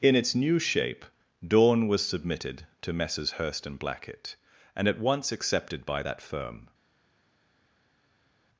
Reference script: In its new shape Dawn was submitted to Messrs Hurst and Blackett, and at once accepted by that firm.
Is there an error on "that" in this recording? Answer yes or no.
no